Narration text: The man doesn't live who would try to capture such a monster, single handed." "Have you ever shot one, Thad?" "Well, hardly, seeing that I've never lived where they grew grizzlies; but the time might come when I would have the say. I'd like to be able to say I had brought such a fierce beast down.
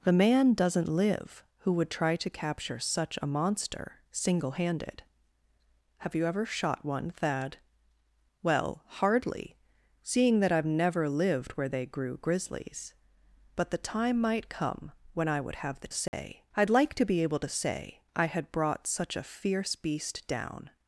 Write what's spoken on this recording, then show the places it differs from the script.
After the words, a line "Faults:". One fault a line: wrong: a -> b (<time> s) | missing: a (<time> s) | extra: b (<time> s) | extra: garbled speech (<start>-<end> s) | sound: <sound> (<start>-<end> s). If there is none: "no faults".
The man doesn't live who would try to capture such a monster, single handed." "Have you ever shot one, Thad?" "Well, hardly, seeing that I've never lived where they grew grizzlies; but the time might come when I would have the say. I'd like to be able to say I had brought such a fierce beast down.
Faults:
sound: dropout (16.1-16.1 s)